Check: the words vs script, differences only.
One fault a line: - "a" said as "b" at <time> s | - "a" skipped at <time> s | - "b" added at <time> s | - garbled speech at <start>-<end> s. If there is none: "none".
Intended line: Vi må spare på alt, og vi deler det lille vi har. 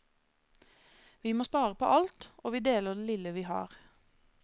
none